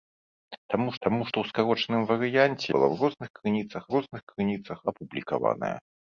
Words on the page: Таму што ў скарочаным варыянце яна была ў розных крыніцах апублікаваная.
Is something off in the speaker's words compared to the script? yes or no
yes